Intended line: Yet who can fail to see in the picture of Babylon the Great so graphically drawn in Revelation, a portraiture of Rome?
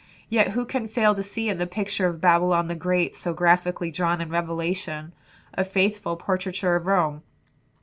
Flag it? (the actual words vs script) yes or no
yes